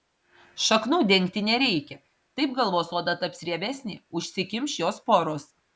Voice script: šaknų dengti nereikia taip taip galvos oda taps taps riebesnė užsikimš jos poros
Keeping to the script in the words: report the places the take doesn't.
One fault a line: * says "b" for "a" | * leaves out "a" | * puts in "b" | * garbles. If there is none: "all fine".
* leaves out "taip"
* leaves out "taps"